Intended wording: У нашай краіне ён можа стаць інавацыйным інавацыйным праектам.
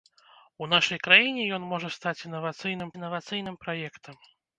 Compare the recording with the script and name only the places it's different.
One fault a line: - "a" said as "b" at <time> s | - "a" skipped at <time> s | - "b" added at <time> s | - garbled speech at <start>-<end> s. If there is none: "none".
none